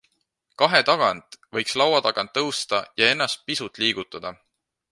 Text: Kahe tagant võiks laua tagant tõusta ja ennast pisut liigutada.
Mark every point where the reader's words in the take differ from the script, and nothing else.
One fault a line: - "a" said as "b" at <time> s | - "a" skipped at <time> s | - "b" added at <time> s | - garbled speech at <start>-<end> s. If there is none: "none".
none